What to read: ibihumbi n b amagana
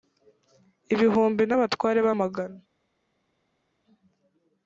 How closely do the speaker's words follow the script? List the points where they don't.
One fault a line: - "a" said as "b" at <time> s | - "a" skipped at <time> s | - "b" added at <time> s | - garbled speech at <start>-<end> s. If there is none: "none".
- "abatware" added at 1.6 s